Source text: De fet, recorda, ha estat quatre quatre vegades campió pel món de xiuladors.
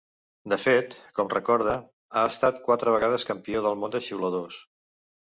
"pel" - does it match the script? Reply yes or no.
no